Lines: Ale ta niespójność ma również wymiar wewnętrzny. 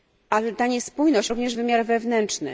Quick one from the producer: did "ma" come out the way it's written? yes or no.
no